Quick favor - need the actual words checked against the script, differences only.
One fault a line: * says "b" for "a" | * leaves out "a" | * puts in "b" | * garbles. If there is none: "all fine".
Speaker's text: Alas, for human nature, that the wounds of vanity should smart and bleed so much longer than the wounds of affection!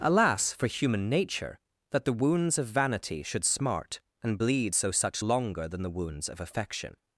* says "such" for "much"